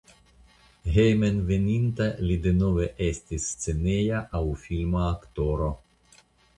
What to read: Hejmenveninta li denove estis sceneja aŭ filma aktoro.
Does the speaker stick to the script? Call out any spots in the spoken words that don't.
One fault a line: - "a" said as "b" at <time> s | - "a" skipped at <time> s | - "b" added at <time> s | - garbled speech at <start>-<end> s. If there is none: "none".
none